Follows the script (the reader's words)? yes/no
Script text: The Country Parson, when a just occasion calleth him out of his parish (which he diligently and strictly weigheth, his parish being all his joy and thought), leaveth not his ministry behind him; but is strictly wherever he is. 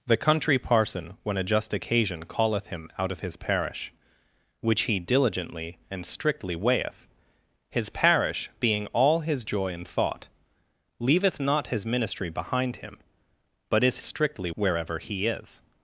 yes